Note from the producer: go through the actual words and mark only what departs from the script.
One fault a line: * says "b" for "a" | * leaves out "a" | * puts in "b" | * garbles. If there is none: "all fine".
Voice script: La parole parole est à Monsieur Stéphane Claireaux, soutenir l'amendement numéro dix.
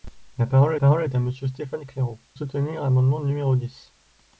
all fine